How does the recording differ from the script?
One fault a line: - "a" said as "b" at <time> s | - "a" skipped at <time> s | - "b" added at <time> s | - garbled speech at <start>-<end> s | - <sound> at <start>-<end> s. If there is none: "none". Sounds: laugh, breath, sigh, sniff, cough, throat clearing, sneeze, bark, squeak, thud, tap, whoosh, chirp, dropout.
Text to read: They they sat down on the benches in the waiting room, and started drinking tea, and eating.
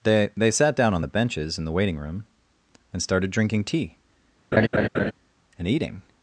- laugh at 4.5-5.1 s